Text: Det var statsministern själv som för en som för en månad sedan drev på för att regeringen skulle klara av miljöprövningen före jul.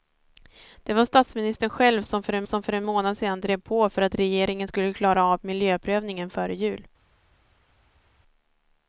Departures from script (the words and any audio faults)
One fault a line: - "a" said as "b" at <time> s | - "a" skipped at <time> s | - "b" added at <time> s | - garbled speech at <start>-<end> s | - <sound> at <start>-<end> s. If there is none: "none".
none